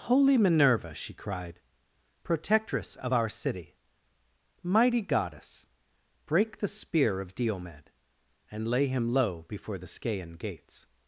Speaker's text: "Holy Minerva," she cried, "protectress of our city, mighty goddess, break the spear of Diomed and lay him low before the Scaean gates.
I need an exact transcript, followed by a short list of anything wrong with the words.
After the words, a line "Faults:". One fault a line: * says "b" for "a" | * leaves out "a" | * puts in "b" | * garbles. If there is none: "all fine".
"Holy Minerva," she cried, "protectress of our city, mighty goddess, break the spear of Diomed and lay him low before the Scaean gates.
Faults:
all fine